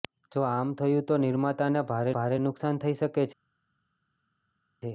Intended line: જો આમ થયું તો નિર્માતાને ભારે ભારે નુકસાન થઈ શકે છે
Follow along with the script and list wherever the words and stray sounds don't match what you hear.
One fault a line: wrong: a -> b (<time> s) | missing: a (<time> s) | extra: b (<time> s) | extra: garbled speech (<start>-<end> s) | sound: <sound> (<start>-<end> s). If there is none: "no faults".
no faults